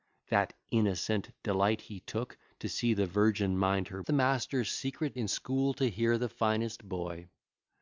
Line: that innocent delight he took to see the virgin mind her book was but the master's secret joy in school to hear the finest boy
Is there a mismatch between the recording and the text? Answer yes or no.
yes